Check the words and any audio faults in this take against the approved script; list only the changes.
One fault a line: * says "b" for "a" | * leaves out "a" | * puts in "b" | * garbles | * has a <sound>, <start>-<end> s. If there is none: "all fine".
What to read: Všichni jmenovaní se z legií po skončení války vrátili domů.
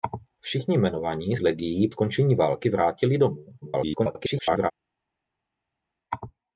* leaves out "se"
* leaves out "po"
* garbles